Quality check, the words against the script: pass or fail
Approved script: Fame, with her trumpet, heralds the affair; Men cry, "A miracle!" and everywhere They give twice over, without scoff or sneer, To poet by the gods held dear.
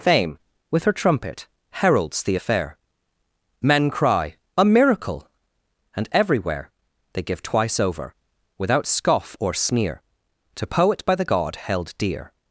fail